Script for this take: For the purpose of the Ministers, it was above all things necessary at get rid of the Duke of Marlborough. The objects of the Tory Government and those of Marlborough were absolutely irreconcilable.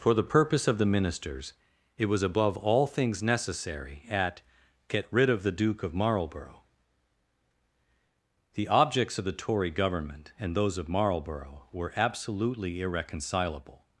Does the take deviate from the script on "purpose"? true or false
false